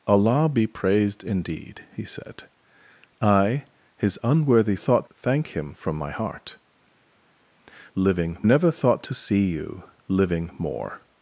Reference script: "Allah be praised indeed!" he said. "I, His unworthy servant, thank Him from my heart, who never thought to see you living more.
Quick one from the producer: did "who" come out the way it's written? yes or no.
no